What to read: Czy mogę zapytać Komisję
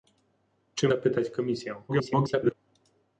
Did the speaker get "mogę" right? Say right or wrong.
wrong